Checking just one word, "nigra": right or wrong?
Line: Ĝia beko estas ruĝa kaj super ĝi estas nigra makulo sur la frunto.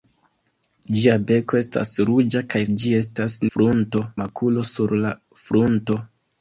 wrong